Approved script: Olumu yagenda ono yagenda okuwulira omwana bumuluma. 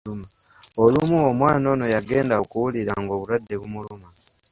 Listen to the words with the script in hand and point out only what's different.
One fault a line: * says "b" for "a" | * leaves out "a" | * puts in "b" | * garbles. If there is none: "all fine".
* says "omwana" for "yagenda"
* says "ng'obulwadde" for "omwana"